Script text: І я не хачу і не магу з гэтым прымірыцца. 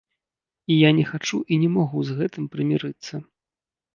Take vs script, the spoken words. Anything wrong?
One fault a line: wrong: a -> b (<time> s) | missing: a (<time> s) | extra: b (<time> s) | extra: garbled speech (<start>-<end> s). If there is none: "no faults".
no faults